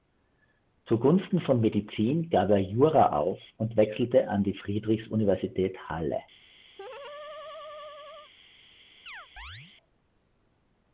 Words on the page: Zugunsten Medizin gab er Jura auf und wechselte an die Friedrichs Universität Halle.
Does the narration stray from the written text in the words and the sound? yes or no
yes